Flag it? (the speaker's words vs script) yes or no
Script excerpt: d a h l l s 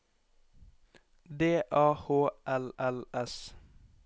no